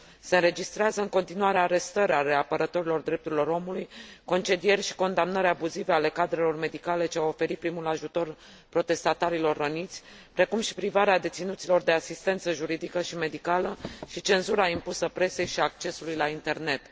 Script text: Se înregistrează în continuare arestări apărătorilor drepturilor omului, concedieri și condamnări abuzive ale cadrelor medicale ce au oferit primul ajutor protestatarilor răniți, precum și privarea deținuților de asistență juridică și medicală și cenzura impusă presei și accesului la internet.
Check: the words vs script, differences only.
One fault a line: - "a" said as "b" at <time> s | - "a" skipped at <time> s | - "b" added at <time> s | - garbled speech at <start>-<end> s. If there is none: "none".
- "ale" added at 2.1 s